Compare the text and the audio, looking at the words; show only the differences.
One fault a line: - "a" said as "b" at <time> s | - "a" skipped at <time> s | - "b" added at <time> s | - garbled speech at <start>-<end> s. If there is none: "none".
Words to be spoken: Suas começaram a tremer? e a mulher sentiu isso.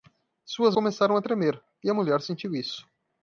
none